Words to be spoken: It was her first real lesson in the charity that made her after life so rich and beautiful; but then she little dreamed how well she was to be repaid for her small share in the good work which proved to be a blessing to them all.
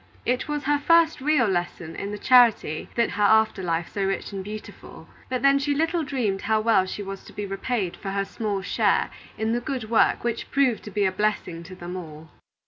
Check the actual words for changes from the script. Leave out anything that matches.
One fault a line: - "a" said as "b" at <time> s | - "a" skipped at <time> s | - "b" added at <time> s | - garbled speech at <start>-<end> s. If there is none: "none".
- "made" skipped at 3.1 s